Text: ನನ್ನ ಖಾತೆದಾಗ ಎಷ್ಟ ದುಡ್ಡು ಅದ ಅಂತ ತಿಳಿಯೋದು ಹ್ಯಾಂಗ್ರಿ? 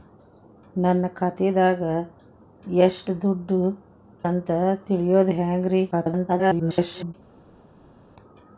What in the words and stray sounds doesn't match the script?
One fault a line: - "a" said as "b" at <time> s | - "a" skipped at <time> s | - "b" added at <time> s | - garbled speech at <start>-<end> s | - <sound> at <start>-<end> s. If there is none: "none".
- "ಅದ" skipped at 3.6 s
- garbled speech at 5.9-7.1 s